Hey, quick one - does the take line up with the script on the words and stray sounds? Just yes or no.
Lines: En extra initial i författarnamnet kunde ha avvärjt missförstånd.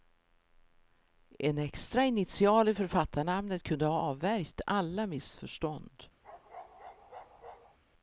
no